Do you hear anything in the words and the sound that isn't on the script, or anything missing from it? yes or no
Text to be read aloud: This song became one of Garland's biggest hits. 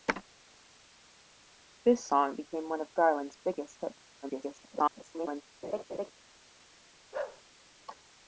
yes